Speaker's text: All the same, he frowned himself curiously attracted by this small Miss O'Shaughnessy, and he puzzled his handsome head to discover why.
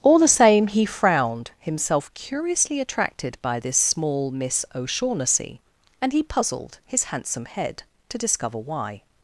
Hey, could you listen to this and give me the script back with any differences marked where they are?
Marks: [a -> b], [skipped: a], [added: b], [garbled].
All the same, he frowned himself curiously attracted by this small Miss O'Shaughnessy, and he puzzled his handsome head to discover why.